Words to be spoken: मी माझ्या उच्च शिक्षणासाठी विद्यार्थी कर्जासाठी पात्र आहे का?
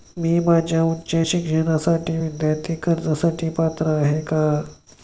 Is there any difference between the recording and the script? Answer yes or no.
no